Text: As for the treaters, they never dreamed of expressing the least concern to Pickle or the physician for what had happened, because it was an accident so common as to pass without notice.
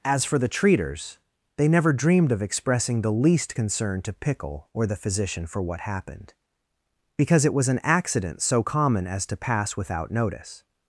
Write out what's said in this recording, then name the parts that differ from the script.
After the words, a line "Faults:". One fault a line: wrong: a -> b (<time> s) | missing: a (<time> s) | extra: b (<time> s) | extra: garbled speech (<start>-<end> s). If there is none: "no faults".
As for the treaters, they never dreamed of expressing the least concern to Pickle or the physician for what happened, because it was an accident so common as to pass without notice.
Faults:
missing: had (5.8 s)